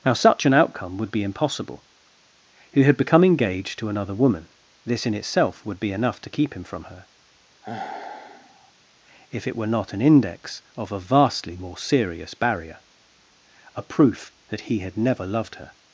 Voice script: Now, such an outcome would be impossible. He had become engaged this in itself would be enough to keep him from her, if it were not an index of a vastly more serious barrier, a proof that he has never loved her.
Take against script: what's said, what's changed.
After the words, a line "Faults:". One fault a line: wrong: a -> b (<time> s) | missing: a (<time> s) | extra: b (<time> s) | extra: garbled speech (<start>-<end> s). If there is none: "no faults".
Now, such an outcome would be impossible. He had become engaged to another woman, this in itself would be enough to keep him from her, if it were not an index of a vastly more serious barrier, a proof that he had never loved her.
Faults:
extra: to another woman (3.8 s)
wrong: has -> had (14.8 s)